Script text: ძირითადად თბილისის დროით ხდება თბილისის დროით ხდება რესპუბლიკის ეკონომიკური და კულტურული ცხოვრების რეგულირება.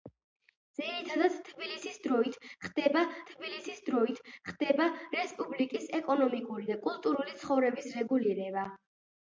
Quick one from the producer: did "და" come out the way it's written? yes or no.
yes